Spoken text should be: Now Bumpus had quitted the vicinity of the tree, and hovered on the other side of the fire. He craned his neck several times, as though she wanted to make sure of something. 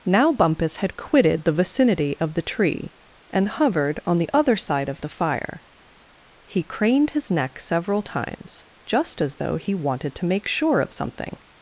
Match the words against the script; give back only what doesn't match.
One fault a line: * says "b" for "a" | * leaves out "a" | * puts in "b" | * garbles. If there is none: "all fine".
* puts in "just"
* says "he" for "she"